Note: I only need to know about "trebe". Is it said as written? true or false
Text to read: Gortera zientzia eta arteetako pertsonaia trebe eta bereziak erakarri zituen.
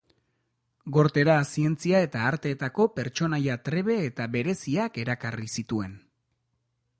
true